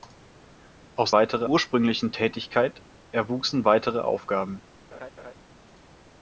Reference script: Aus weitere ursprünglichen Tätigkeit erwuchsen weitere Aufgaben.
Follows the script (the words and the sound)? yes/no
no